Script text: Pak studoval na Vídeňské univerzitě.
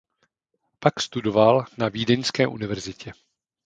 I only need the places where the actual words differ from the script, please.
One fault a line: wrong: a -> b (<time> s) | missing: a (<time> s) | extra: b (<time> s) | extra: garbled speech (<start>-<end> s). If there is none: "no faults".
no faults